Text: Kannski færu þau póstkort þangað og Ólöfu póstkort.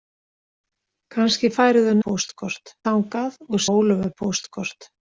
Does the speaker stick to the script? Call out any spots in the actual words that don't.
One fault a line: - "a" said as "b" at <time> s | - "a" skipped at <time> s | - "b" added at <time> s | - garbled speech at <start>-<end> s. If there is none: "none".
none